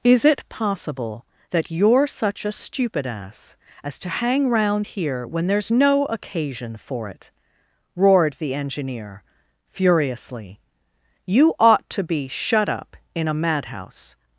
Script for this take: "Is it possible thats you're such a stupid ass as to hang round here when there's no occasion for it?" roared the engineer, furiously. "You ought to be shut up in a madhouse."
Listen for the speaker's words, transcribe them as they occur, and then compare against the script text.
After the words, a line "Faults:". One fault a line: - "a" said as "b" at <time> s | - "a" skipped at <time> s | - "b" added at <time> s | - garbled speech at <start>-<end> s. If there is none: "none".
"Is it possible that you're such a stupid ass as to hang round here when there's no occasion for it?" roared the engineer, furiously. "You ought to be shut up in a madhouse."
Faults:
- "thats" said as "that" at 1.5 s